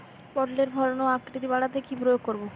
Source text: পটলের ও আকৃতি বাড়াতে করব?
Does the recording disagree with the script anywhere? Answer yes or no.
yes